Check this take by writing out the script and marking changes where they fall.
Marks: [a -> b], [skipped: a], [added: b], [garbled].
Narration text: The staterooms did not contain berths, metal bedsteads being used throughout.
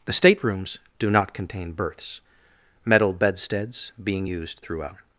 The staterooms [did -> do] not contain berths, metal bedsteads being used throughout.